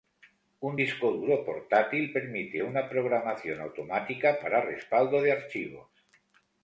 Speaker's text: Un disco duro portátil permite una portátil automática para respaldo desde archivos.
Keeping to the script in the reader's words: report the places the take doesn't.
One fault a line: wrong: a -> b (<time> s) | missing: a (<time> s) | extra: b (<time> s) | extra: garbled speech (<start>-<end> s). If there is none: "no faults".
wrong: portátil -> programación (2.9 s)
wrong: desde -> de (5.2 s)